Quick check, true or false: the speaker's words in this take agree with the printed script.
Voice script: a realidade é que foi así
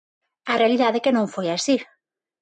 false